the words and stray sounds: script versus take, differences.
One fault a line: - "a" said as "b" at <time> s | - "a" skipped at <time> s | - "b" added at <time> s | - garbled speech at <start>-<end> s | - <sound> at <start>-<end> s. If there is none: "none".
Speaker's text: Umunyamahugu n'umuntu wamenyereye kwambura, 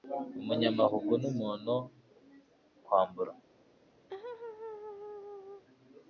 - "wamenyereye" skipped at 1.7 s
- laugh at 4.1-5.6 s